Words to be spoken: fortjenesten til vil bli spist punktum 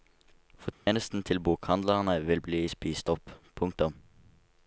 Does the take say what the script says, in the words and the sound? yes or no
no